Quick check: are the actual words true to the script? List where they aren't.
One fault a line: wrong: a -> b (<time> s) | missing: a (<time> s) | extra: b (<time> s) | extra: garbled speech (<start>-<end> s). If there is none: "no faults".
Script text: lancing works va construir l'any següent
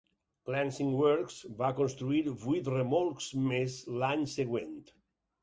extra: vuit remolcs més (2.5 s)